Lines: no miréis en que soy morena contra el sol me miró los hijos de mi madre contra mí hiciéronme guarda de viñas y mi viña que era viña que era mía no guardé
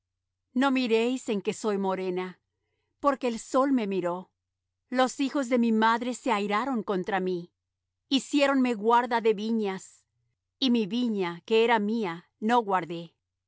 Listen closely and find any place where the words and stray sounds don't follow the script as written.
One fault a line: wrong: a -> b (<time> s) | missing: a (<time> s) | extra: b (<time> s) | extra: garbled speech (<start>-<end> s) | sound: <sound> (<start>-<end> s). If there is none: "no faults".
wrong: contra -> porque (3.0 s)
extra: se airaron (6.1 s)
missing: viña que era (11.8 s)